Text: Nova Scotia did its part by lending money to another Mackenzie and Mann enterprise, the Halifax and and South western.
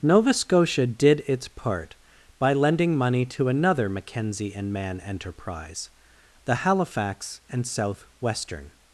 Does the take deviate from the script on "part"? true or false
false